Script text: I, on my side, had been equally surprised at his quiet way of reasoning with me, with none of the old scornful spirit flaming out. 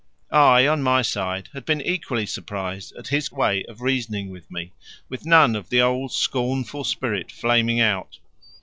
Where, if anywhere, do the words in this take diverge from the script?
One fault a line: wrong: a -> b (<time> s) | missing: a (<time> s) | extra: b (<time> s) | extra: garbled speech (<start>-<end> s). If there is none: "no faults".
missing: quiet (3.3 s)